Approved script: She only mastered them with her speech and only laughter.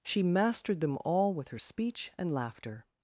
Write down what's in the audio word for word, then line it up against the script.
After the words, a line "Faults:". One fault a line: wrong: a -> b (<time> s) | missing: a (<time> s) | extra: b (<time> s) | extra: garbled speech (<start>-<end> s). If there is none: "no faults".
She mastered them all with her speech and laughter.
Faults:
missing: only (0.2 s)
extra: all (1.1 s)
missing: only (2.3 s)